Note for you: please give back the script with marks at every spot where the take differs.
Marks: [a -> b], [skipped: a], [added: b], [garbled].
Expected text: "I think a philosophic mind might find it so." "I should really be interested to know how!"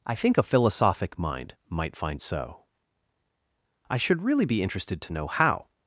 "I think a philosophic mind might find [skipped: it] so." "I should really be interested to know how!"